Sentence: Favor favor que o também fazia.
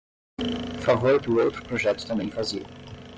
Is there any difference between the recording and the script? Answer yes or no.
yes